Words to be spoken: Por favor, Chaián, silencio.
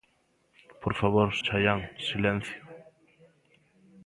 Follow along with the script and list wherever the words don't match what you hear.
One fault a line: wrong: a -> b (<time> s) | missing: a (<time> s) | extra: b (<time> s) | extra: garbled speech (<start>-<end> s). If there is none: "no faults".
no faults